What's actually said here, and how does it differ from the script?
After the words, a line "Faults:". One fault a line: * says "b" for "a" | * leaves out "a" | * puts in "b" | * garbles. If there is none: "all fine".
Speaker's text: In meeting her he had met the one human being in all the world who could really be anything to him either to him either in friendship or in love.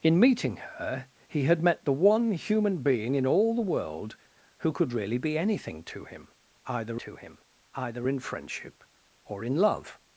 In meeting her he had met the one human being in all the world who could really be anything to him either to him either in friendship or in love.
Faults:
all fine